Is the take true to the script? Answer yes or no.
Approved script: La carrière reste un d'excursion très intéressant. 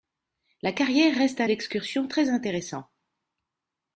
yes